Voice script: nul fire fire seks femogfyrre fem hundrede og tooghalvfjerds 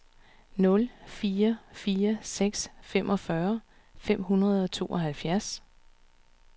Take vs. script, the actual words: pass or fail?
pass